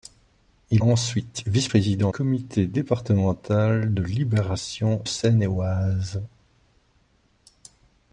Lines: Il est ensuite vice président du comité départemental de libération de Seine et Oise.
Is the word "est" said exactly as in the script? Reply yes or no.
no